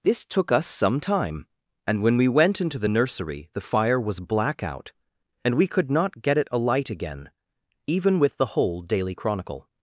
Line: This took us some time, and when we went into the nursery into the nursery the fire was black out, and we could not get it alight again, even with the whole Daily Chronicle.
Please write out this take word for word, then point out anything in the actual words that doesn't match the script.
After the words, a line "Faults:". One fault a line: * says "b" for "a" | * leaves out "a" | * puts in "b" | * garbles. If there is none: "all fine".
This took us some time, and when we went into the nursery the fire was black out, and we could not get it alight again, even with the whole Daily Chronicle.
Faults:
* leaves out "into the nursery"